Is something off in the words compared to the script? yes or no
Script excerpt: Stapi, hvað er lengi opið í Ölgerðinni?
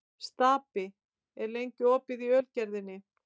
no